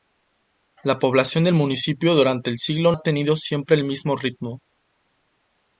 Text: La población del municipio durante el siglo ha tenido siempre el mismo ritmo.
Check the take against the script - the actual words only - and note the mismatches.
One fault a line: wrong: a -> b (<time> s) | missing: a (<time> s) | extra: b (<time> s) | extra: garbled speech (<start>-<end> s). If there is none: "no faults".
no faults